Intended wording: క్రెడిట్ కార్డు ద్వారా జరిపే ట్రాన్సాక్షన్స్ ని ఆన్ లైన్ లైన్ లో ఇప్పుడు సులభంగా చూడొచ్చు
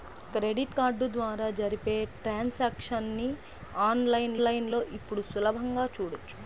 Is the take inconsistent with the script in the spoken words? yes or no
no